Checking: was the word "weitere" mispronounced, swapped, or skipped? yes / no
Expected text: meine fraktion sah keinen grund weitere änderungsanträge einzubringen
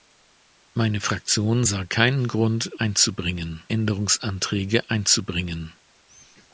yes